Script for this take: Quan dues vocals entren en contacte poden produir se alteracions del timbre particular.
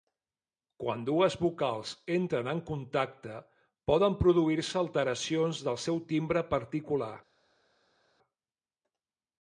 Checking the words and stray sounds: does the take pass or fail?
fail